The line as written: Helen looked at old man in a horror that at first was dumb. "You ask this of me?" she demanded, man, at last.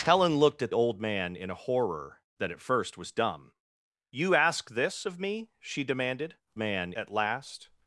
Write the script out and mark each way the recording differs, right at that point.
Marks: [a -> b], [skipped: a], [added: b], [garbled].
Helen looked at old man in a horror that at first was dumb. "You ask this of me?" she demanded, man, at last.